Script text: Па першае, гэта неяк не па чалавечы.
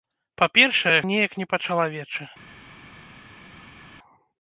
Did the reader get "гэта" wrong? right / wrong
wrong